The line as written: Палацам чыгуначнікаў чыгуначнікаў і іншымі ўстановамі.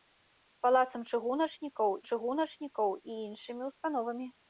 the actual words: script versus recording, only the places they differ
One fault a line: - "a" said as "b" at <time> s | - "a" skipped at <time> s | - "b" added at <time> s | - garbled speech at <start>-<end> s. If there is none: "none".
none